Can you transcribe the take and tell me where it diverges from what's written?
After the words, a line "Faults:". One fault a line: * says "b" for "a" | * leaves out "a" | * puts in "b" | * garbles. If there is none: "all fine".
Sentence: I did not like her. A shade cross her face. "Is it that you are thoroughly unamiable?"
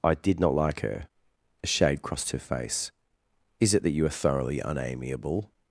I did not like her. A shade crossed her face. "Is it that you are thoroughly unamiable?"
Faults:
* says "crossed" for "cross"